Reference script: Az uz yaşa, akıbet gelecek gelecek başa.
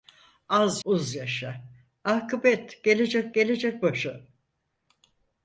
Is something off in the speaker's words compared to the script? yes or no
no